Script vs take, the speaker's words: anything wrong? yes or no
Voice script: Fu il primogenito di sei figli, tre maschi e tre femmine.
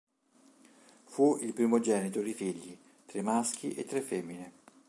yes